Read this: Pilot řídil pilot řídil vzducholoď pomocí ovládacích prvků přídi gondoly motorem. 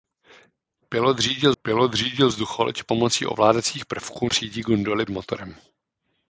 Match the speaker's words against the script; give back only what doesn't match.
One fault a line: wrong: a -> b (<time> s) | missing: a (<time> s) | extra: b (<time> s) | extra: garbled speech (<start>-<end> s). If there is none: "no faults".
no faults